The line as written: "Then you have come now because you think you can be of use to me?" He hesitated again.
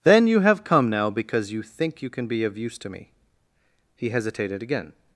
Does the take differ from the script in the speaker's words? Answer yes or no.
no